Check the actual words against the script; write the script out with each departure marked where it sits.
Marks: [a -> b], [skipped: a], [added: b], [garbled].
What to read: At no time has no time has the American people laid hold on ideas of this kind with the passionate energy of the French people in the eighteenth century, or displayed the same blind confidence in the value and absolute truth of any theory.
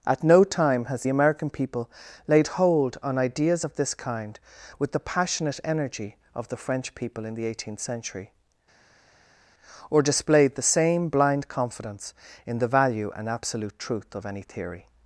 At no time has [skipped: no time has] the American people laid hold on ideas of this kind with the passionate energy of the French people in the eighteenth century, or displayed the same blind confidence in the value and absolute truth of any theory.